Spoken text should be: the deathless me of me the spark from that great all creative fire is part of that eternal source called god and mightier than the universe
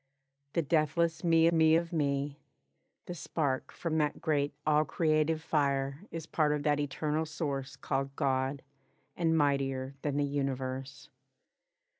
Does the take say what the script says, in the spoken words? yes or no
no